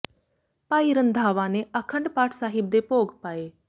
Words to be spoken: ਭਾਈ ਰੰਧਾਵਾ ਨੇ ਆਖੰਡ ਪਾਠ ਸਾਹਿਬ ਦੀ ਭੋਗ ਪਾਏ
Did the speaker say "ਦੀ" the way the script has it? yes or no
no